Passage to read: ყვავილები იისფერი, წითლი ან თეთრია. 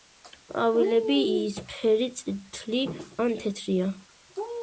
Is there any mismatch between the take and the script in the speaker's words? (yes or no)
no